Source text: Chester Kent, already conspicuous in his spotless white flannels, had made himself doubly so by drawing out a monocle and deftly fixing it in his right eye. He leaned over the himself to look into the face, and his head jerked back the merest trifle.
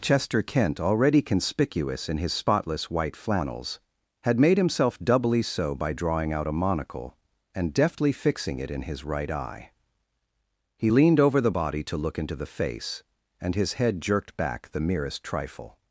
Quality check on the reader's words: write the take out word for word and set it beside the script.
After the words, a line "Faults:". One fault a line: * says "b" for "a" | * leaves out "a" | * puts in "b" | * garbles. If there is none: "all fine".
Chester Kent, already conspicuous in his spotless white flannels, had made himself doubly so by drawing out a monocle and deftly fixing it in his right eye. He leaned over the body to look into the face, and his head jerked back the merest trifle.
Faults:
* says "body" for "himself"